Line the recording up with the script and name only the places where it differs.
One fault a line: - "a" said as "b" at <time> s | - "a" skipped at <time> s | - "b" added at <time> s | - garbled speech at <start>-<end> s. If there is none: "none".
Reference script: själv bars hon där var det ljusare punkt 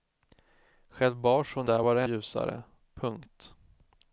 none